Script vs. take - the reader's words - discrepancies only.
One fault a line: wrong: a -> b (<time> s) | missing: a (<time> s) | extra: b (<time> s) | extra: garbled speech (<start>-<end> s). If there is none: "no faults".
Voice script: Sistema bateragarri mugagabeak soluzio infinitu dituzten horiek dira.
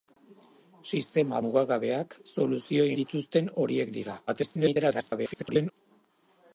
missing: bateragarri (1.4 s)
missing: infinitu (2.9 s)
extra: garbled speech (4.3-5.7 s)